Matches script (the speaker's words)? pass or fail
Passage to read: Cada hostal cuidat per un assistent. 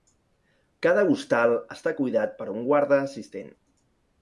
fail